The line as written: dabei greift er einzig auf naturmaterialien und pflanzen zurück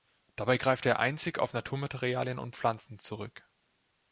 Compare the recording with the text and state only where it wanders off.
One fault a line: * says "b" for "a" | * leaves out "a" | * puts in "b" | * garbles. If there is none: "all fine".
all fine